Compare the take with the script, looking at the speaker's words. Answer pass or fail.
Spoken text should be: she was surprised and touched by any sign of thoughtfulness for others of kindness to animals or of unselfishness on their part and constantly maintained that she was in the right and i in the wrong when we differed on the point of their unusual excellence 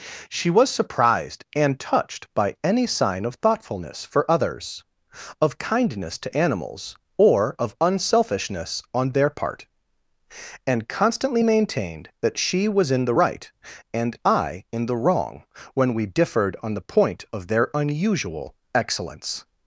pass